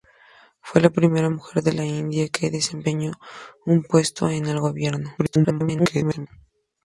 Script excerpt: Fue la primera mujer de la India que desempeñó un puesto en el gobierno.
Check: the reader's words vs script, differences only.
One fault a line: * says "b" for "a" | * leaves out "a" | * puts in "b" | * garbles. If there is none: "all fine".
* garbles